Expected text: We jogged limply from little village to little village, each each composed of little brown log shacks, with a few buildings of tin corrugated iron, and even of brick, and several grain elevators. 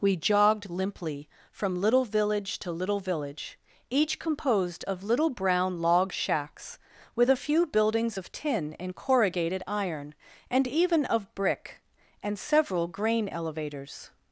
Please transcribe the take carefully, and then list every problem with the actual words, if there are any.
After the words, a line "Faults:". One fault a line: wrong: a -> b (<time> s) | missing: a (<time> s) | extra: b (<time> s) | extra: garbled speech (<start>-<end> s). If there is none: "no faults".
We jogged limply from little village to little village, each composed of little brown log shacks, with a few buildings of tin and corrugated iron, and even of brick, and several grain elevators.
Faults:
missing: each (4.2 s)
extra: and (8.8 s)